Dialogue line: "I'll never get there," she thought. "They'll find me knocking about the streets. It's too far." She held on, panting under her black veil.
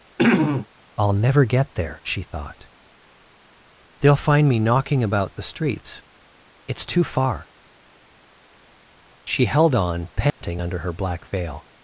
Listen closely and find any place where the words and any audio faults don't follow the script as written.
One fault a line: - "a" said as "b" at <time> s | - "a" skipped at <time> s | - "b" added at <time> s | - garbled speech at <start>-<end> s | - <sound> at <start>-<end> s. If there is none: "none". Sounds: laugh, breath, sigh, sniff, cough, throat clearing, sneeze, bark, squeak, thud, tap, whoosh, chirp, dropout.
- throat clearing at 0.2-0.7 s
- dropout at 10.3-10.4 s